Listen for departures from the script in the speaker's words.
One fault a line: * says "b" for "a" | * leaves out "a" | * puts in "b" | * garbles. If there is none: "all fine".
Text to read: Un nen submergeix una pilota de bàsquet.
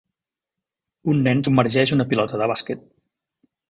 all fine